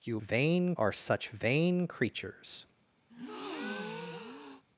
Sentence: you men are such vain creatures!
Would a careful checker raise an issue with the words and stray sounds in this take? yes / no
yes